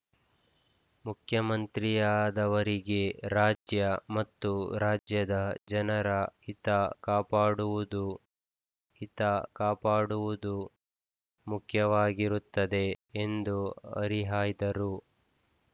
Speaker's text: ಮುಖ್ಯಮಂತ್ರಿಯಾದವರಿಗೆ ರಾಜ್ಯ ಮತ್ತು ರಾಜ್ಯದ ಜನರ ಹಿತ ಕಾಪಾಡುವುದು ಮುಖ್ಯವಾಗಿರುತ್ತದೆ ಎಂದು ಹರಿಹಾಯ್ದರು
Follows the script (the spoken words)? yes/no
no